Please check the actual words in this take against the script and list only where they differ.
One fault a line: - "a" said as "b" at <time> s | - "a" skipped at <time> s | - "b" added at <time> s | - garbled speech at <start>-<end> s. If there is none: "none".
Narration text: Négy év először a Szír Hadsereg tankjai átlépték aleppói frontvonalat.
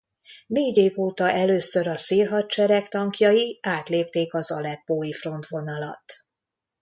- "óta" added at 1.0 s
- "az" added at 4.3 s